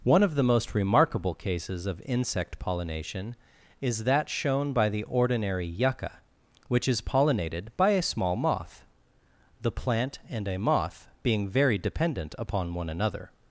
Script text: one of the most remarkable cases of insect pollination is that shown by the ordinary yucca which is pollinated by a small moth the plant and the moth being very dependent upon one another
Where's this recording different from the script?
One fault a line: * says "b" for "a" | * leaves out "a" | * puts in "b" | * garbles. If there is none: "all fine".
* says "a" for "the"